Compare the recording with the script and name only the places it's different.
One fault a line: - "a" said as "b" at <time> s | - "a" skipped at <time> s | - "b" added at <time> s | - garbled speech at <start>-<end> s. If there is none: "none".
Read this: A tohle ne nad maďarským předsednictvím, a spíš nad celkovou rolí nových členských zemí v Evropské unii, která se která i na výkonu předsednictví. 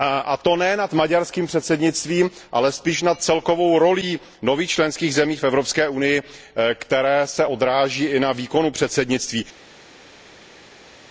- "tohle" said as "to" at 0.4 s
- "a" said as "ale" at 2.5 s
- "která" said as "odráží" at 7.4 s